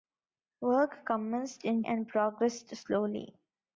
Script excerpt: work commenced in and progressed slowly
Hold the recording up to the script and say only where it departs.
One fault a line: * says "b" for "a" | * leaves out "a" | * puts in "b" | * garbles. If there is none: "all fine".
all fine